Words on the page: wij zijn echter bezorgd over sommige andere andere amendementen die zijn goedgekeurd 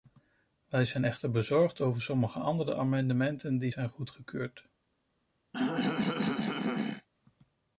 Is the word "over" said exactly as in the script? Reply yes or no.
yes